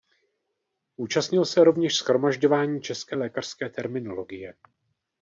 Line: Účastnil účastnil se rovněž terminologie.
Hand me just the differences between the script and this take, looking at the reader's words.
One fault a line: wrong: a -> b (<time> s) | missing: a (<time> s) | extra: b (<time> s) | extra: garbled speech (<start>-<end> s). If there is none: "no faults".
missing: účastnil (1.4 s)
extra: shromažďování české lékařské (2.0 s)